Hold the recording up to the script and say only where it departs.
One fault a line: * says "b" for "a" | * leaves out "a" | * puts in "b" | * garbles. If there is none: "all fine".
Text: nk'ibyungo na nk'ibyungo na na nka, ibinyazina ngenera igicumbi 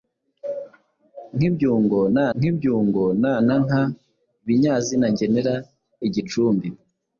all fine